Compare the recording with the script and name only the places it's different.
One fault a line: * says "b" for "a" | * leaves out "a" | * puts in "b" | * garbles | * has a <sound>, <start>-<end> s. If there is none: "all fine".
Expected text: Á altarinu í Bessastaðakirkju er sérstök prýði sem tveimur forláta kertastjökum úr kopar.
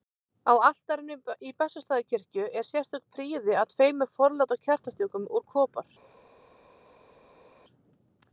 * says "að" for "sem"